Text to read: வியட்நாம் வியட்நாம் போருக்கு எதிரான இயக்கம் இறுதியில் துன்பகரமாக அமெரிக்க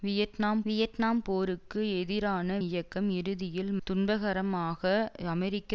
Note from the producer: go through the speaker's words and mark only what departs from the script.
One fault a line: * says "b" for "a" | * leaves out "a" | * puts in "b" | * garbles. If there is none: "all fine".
all fine